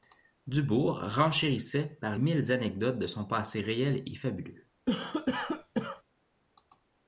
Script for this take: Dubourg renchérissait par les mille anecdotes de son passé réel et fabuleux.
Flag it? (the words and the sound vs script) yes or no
yes